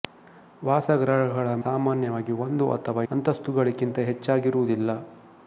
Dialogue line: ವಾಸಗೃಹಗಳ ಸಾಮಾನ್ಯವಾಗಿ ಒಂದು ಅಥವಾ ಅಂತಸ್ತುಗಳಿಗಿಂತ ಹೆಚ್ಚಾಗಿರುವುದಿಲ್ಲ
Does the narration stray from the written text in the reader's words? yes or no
no